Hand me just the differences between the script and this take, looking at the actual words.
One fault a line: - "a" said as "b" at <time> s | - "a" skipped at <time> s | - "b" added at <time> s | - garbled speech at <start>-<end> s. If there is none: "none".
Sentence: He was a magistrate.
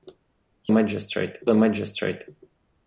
- "was" said as "magistrate" at 0.7 s